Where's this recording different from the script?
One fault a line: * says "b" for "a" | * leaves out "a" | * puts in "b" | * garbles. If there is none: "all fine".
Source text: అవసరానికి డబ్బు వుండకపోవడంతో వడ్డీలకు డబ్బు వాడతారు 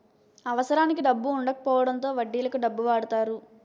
all fine